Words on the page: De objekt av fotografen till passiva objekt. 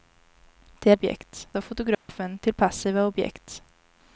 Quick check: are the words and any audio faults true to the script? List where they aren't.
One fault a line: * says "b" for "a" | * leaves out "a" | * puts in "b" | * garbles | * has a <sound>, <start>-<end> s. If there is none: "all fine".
* has a dropout, 1.9-2.1 s